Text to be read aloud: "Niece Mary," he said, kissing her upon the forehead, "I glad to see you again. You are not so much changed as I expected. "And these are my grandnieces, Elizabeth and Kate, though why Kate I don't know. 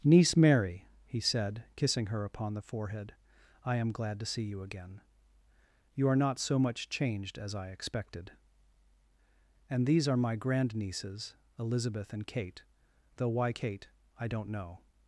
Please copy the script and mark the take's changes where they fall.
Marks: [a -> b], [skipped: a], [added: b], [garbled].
"Niece Mary," he said, kissing her upon the forehead, "I [added: am] glad to see you again. You are not so much changed as I expected. "And these are my grandnieces, Elizabeth and Kate, though why Kate I don't know.